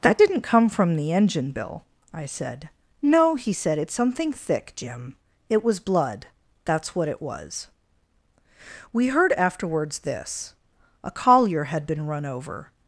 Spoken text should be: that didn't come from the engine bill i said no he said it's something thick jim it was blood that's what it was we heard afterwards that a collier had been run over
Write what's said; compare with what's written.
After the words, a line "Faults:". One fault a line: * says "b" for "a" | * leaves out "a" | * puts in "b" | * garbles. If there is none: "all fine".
that didn't come from the engine bill i said no he said it's something thick jim it was blood that's what it was we heard afterwards this a collier had been run over
Faults:
* says "this" for "that"